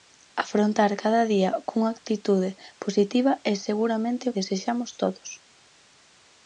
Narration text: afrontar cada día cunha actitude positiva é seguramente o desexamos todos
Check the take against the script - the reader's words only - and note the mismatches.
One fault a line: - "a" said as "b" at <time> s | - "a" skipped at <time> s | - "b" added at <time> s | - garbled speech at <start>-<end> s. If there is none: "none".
none